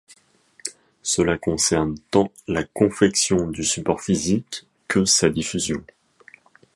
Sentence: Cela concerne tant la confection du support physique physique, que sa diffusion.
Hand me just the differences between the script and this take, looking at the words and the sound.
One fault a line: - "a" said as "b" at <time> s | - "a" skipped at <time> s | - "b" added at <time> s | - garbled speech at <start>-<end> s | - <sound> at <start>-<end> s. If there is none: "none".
- "physique" skipped at 4.7 s